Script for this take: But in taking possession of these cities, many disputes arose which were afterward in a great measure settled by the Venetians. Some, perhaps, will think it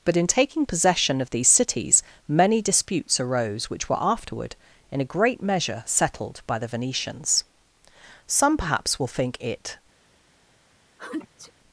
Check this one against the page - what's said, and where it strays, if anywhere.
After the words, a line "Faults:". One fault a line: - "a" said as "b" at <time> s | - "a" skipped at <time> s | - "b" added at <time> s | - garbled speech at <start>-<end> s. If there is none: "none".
But in taking possession of these cities, many disputes arose which were afterward in a great measure settled by the Venetians. Some, perhaps, will think it
Faults:
none